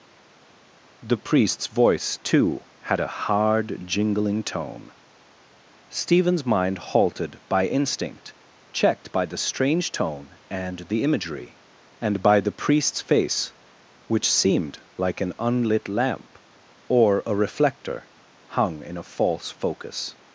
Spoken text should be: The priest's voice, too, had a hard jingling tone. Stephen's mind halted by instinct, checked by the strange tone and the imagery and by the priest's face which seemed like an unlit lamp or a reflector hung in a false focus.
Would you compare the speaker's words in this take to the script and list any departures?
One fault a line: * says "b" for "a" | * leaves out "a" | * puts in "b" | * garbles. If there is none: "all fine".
all fine